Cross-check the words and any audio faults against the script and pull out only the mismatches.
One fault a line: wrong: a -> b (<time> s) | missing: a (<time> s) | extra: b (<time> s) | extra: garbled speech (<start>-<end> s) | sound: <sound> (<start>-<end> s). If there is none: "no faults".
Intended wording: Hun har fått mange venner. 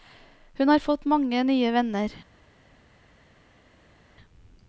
extra: nye (1.4 s)